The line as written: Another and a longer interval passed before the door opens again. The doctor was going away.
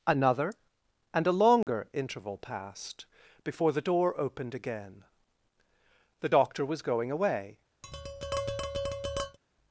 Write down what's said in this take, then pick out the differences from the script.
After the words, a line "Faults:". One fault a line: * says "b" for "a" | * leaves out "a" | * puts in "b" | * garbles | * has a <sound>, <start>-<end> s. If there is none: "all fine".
Another and a longer interval passed before the door opened again. The doctor was going away.
Faults:
* has a dropout, 1.6-1.7 s
* says "opened" for "opens"
* has a tap, 7.8-9.4 s